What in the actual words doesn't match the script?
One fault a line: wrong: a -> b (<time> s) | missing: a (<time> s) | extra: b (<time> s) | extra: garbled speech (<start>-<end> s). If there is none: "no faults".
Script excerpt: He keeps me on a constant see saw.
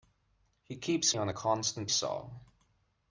missing: me (1.1 s)
missing: see (1.9 s)